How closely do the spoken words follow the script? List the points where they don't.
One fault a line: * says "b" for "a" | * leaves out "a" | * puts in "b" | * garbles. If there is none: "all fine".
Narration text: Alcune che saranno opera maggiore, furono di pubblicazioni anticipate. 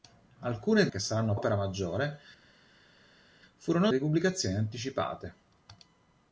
all fine